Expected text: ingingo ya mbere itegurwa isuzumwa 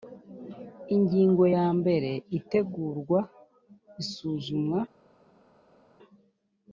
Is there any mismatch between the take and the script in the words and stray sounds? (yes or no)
no